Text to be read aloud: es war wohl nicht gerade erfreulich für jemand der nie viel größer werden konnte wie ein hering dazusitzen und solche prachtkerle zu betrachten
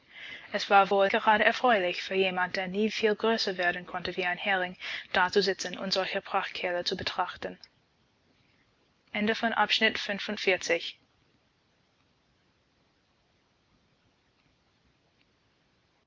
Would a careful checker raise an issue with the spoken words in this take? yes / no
yes